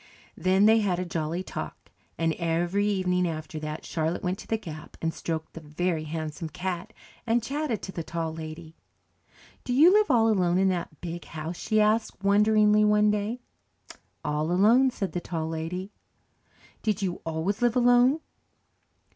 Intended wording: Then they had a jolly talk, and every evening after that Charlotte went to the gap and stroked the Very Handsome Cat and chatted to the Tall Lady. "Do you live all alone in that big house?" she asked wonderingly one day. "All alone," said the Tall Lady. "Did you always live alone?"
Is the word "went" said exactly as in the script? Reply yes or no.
yes